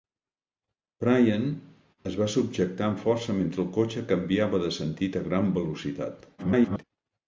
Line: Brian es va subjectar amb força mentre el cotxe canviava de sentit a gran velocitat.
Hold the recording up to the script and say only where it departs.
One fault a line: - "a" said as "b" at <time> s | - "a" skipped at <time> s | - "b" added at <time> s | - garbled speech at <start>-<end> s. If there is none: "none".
- garbled speech at 6.4-6.8 s